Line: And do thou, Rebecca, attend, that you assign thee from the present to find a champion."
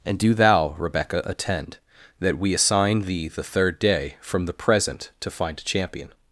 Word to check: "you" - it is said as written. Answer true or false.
false